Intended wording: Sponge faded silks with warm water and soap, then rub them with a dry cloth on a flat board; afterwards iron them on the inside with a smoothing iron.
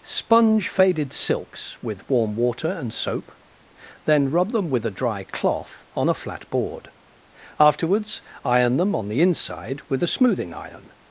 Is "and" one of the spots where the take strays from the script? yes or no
no